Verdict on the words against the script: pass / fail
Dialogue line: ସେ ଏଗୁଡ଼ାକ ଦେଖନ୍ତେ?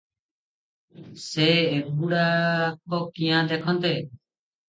fail